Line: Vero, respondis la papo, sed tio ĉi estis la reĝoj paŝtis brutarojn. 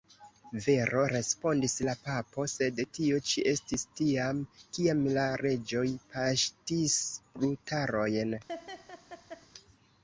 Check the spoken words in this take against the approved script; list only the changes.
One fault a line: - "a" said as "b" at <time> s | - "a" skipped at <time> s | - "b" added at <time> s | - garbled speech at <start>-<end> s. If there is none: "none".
- "tiam kiam" added at 4.0 s